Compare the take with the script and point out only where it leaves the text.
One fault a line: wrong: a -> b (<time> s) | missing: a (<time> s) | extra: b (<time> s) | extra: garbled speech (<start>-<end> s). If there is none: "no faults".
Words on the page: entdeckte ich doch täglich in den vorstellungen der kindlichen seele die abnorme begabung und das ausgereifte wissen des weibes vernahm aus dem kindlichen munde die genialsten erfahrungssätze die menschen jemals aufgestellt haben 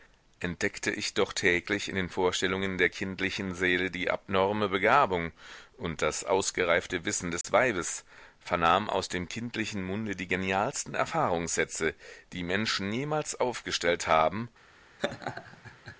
no faults